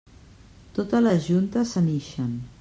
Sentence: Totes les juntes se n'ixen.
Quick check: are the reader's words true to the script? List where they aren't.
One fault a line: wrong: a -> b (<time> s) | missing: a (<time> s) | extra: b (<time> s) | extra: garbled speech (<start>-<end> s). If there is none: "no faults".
no faults